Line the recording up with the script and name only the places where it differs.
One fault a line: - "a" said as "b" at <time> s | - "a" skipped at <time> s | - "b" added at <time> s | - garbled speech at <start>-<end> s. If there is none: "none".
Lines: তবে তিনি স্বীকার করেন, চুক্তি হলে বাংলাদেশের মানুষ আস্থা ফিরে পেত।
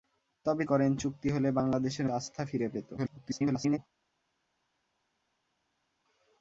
- "তিনি স্বীকার" skipped at 0.6 s
- "মানুষ" skipped at 2.1 s
- garbled speech at 3.0-3.8 s